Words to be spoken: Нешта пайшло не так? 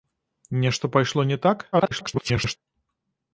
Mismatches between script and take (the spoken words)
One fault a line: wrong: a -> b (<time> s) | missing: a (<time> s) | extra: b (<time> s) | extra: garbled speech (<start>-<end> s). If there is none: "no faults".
extra: garbled speech (1.7-2.6 s)